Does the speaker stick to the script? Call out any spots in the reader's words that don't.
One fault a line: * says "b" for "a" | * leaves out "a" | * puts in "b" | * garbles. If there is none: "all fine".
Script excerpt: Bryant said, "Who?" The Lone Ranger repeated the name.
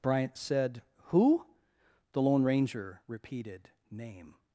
* leaves out "the"